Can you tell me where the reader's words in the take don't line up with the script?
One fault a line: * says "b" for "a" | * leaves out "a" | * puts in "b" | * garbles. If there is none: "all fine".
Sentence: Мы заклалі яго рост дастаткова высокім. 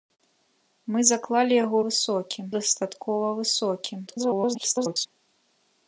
* says "высокім" for "рост"
* garbles